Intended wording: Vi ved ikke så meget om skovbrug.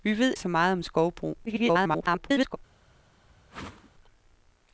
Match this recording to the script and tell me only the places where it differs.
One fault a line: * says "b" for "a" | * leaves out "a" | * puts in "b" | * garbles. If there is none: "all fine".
* leaves out "ikke"
* garbles